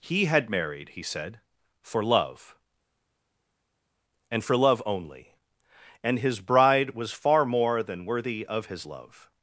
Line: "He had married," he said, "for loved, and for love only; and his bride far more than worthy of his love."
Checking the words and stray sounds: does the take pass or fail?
fail